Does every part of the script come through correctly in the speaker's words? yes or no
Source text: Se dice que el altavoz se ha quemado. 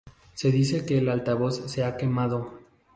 yes